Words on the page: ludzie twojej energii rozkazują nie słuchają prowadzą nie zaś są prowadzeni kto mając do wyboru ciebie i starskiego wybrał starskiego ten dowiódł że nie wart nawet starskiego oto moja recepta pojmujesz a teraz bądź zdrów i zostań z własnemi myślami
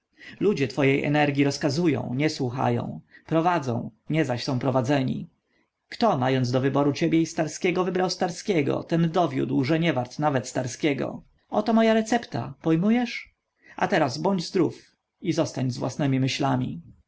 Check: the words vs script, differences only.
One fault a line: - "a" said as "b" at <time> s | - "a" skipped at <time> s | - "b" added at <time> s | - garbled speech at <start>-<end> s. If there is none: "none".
none